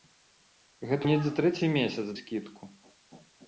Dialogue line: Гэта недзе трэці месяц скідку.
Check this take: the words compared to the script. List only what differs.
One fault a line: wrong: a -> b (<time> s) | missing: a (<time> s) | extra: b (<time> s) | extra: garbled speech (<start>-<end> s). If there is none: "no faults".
no faults